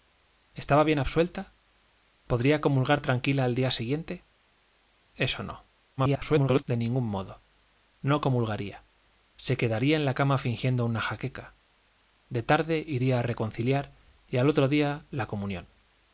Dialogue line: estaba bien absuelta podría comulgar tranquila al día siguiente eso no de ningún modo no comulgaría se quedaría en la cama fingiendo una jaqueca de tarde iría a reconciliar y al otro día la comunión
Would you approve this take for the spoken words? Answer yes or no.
no